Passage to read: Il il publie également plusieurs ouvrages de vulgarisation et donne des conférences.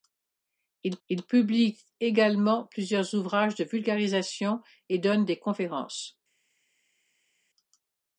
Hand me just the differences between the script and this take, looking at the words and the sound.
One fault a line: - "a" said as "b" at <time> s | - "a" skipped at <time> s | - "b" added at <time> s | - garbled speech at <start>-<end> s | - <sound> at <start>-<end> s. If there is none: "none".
none